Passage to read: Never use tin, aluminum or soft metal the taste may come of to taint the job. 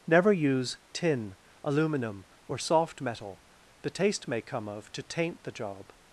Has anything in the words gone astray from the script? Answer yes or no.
no